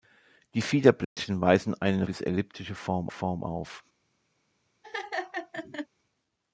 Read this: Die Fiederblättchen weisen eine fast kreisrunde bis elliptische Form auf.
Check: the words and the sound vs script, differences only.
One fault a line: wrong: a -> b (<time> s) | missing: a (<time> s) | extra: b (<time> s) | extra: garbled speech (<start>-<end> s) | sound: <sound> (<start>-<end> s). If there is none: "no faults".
sound: dropout (1.0-1.2 s)
missing: fast kreisrunde (2.1 s)
extra: Form (3.1 s)
sound: laugh (4.8-5.9 s)